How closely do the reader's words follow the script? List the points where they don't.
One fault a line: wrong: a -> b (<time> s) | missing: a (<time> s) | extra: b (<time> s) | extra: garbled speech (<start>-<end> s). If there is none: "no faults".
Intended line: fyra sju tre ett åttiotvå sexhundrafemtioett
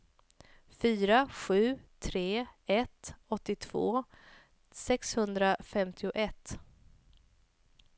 no faults